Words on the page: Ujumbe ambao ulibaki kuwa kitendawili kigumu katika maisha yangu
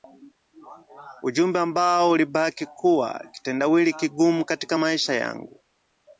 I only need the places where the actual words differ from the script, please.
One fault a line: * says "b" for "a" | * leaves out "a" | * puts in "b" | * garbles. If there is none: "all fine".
all fine